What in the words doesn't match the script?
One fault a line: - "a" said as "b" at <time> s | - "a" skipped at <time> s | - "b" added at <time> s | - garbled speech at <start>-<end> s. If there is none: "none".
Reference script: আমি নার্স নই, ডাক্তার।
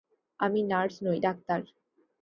none